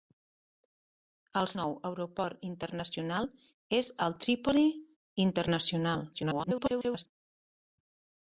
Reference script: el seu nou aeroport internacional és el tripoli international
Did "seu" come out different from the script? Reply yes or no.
yes